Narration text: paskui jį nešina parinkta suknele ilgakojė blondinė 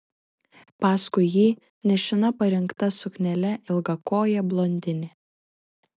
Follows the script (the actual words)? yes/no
yes